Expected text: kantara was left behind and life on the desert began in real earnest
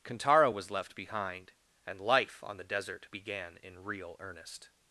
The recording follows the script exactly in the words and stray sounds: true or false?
true